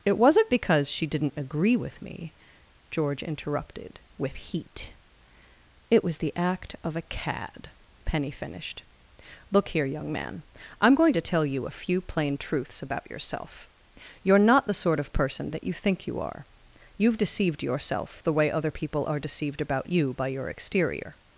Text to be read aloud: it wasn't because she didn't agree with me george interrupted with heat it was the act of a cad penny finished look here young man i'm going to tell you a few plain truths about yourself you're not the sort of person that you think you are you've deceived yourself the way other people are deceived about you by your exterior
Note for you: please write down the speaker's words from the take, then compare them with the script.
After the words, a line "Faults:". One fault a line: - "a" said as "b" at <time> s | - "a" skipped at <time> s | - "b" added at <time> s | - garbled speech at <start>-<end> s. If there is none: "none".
it wasn't because she didn't agree with me george interrupted with heat it was the act of a cad penny finished look here young man i'm going to tell you a few plain truths about yourself you're not the sort of person that you think you are you've deceived yourself the way other people are deceived about you by your exterior
Faults:
none